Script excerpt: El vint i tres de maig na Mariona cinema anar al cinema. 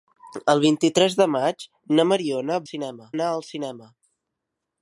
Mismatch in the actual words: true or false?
false